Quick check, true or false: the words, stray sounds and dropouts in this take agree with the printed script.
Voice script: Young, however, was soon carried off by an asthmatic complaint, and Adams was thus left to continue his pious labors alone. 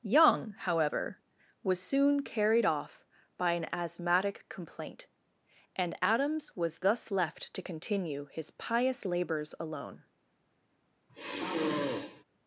false